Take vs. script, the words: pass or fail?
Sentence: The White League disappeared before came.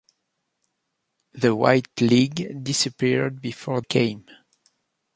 pass